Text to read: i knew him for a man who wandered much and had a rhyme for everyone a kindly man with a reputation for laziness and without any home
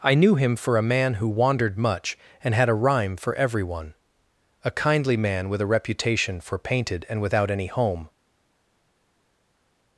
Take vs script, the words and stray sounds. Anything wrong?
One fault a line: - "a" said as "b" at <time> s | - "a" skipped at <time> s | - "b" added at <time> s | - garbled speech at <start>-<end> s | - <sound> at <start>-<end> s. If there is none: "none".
- "laziness" said as "painted" at 6.6 s